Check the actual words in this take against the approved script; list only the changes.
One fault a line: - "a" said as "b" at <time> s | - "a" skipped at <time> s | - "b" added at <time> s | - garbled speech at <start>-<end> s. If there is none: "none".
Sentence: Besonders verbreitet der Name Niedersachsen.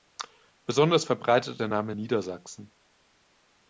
none